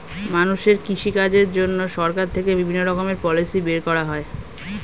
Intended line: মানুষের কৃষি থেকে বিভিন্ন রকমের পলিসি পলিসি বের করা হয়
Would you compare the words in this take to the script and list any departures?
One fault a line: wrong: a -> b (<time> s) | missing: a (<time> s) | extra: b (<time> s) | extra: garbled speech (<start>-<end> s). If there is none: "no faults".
extra: কাজের জন্য সরকার (1.2 s)
missing: পলিসি (3.6 s)